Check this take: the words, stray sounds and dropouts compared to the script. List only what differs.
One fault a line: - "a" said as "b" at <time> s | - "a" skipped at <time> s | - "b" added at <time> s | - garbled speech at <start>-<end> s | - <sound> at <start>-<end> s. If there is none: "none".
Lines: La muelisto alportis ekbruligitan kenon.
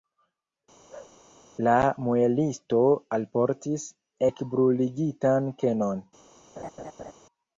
- bark at 0.9-1.2 s
- laugh at 6.6-7.1 s